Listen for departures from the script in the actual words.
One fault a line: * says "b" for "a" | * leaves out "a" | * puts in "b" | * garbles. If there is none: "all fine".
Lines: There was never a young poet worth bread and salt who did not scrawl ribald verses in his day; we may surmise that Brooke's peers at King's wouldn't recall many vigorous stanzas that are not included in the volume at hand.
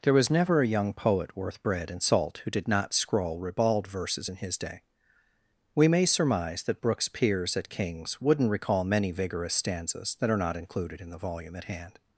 all fine